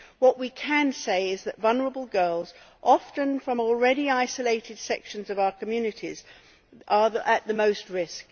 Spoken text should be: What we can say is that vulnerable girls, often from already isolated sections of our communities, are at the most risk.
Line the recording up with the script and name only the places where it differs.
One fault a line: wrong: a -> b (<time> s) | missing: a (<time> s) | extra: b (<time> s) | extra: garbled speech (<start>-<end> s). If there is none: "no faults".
no faults